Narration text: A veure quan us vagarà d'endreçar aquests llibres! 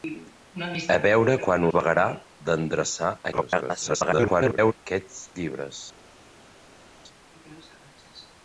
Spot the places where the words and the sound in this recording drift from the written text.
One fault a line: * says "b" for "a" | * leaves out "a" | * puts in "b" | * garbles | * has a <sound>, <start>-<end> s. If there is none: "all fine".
* leaves out "us"
* garbles